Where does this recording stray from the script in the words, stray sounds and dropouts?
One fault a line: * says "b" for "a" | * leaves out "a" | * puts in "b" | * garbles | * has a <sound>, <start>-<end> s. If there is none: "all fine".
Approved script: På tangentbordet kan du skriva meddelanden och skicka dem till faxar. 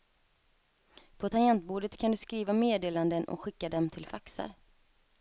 all fine